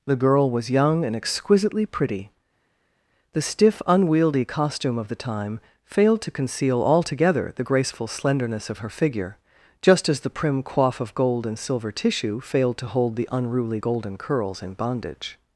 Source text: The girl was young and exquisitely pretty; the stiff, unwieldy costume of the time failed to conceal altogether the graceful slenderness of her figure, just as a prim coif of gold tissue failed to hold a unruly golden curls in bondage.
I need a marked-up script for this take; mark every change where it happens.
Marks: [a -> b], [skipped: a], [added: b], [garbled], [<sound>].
The girl was young and exquisitely pretty; the stiff, unwieldy costume of the time failed to conceal altogether the graceful slenderness of her figure, just as [a -> the] prim coif of gold [added: and silver] tissue failed to hold [a -> the] unruly golden curls in bondage.